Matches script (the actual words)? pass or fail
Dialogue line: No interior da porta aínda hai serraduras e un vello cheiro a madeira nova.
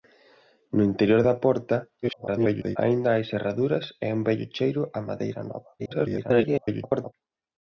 fail